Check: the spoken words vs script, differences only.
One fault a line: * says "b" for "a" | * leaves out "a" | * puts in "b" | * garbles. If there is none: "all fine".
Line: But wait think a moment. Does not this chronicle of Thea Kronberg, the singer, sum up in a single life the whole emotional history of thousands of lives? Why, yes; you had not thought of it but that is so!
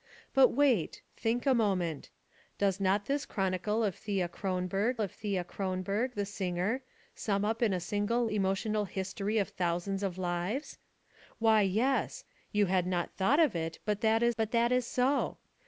* puts in "of Thea Kronberg"
* leaves out "life the whole"
* puts in "but that is"